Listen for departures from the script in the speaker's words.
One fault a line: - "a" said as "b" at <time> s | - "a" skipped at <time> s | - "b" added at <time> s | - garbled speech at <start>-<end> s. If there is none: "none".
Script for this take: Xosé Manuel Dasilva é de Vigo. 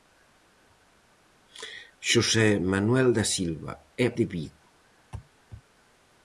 none